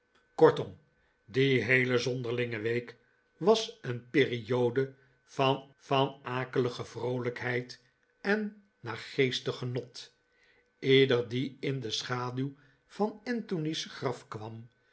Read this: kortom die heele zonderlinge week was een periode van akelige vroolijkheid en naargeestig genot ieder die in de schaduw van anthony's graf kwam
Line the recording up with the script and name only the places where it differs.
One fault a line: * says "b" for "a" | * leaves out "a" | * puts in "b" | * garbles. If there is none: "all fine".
* puts in "van"